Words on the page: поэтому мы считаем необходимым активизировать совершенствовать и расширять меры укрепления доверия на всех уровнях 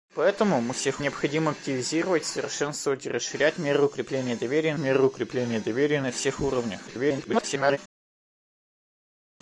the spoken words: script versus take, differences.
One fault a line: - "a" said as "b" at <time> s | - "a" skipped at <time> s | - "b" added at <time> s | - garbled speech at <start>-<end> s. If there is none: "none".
- "считаем" said as "всех" at 0.7 s
- "меры укрепления доверия" added at 4.8 s
- garbled speech at 6.9-7.8 s